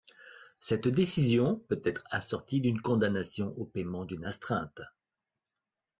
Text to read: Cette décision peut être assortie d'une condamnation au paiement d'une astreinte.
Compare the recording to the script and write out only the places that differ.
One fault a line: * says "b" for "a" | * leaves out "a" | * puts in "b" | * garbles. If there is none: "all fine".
all fine